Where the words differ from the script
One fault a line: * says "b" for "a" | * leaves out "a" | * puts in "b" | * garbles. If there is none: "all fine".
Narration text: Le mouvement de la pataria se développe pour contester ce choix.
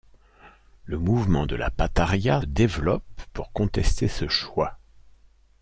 * leaves out "se"